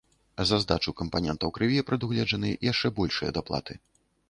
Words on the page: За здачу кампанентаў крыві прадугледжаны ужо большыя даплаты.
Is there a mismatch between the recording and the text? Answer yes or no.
yes